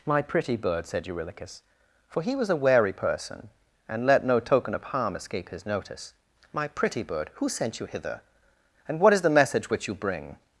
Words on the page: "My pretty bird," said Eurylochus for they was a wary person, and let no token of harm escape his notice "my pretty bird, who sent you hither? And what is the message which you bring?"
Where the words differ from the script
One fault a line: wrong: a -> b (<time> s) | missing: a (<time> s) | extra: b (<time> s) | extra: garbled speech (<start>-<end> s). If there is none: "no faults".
wrong: they -> he (2.2 s)